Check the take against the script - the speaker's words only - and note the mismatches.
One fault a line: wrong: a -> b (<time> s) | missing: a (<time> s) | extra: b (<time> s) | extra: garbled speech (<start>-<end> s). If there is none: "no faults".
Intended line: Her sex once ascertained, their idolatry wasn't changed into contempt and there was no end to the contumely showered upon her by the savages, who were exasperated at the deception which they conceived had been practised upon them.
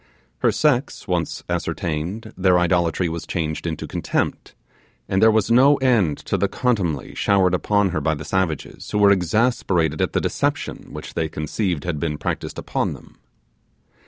wrong: wasn't -> was (3.1 s)